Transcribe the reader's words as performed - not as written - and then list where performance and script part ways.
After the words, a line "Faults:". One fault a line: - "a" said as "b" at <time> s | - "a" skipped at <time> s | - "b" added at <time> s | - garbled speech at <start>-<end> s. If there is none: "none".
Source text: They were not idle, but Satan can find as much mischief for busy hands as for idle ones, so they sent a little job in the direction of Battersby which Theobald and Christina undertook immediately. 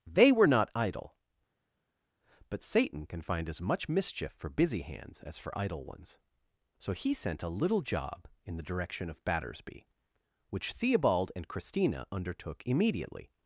They were not idle, but Satan can find as much mischief for busy hands as for idle ones, so he sent a little job in the direction of Battersby which Theobald and Christina undertook immediately.
Faults:
- "they" said as "he" at 6.9 s